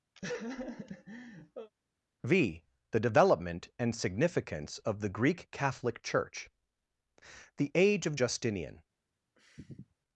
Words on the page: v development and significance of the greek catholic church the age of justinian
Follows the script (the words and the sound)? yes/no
no